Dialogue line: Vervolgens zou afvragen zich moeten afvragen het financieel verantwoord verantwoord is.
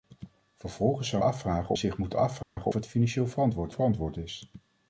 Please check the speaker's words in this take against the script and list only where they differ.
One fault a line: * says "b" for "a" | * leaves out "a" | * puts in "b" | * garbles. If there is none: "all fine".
all fine